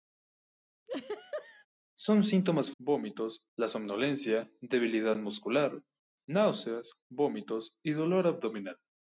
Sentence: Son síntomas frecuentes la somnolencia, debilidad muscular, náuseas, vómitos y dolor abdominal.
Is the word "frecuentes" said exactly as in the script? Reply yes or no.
no